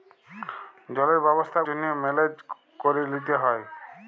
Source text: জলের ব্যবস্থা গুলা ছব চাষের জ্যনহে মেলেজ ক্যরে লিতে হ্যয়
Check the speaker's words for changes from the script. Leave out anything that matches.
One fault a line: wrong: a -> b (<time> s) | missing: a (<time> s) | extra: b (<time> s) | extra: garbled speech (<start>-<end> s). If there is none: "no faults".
missing: গুলা ছব চাষের (1.6 s)